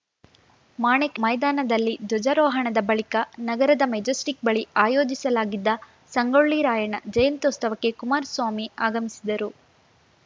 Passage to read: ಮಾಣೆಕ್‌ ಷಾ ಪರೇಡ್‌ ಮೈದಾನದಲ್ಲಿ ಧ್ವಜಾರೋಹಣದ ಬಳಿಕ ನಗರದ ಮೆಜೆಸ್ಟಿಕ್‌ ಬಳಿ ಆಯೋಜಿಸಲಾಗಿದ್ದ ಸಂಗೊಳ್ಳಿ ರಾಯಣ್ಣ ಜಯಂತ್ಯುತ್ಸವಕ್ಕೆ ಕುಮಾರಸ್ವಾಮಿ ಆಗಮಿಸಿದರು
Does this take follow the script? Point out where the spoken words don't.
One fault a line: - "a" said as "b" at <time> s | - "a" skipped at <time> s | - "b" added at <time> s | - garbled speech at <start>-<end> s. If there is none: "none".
- "ಷಾ ಪರೇಡ್" skipped at 1.2 s